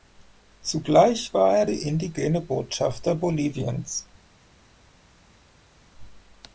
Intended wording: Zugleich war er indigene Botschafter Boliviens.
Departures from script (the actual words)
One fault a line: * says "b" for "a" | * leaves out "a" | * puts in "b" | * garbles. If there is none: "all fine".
all fine